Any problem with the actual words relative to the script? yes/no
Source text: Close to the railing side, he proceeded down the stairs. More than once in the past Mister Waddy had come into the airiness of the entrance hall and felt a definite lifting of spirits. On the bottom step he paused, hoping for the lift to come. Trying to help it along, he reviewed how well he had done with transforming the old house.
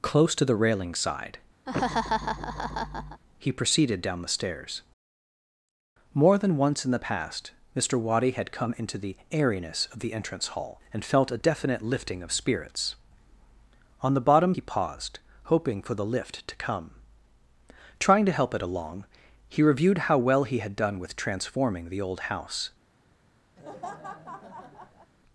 yes